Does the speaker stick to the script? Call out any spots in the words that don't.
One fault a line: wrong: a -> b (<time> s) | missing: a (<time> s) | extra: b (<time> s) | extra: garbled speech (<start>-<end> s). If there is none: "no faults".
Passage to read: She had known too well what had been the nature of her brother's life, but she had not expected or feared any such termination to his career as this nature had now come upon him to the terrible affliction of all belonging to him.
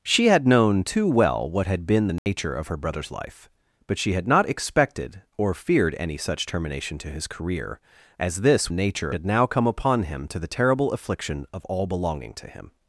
no faults